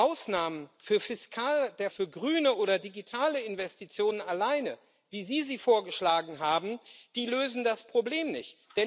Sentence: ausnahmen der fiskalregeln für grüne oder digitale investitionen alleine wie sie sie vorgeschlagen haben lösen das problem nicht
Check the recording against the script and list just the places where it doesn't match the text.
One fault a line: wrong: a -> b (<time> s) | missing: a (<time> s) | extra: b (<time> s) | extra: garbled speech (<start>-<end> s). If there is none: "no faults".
missing: fiskalregeln (1.9 s)